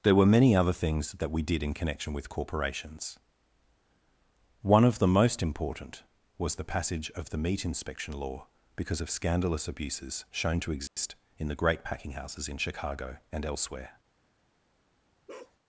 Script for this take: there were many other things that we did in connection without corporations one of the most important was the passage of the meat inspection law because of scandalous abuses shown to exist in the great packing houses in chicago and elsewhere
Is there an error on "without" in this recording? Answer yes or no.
yes